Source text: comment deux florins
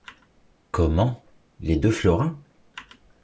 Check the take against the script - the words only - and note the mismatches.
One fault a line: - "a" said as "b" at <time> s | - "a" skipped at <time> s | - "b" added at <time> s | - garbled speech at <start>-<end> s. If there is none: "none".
- "les" added at 1.6 s